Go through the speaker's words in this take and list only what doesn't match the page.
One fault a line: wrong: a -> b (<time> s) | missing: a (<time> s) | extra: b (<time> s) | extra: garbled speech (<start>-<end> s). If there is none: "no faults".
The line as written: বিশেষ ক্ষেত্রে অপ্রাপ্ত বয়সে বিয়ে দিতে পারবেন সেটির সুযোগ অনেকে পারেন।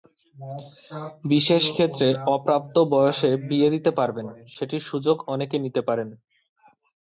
extra: নিতে (5.6 s)